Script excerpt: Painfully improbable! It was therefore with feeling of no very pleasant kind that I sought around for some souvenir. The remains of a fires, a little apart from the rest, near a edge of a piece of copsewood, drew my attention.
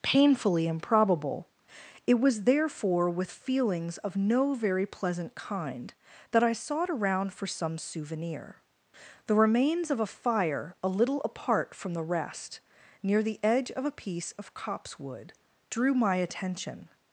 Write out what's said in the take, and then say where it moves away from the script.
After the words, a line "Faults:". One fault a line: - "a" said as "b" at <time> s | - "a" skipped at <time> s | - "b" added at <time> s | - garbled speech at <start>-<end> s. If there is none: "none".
Painfully improbable! It was therefore with feelings of no very pleasant kind that I sought around for some souvenir. The remains of a fire, a little apart from the rest, near the edge of a piece of copsewood, drew my attention.
Faults:
- "feeling" said as "feelings" at 3.3 s
- "fires" said as "fire" at 10.1 s
- "a" said as "the" at 13.2 s